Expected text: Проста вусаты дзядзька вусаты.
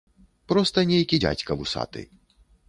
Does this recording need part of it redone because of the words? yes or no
yes